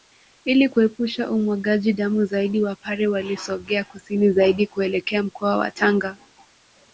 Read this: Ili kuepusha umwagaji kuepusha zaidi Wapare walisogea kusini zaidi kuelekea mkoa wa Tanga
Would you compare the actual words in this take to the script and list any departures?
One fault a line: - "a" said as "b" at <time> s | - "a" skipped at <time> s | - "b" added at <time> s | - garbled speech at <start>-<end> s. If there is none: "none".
- "kuepusha" said as "damu" at 1.9 s